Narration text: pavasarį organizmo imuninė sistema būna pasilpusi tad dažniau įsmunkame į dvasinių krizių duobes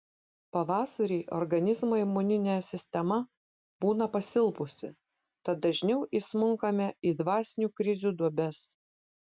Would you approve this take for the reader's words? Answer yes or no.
yes